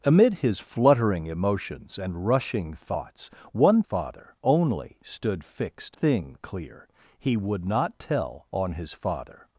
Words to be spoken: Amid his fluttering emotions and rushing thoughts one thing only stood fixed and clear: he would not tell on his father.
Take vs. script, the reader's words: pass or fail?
fail